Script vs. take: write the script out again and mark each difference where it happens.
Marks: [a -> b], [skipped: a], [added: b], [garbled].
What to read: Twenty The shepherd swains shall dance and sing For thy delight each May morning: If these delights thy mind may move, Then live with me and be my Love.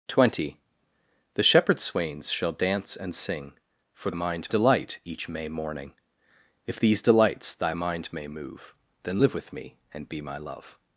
Twenty The shepherd swains shall dance and sing For [thy -> mind] delight each May morning: If these delights thy mind may move, Then live with me and be my Love.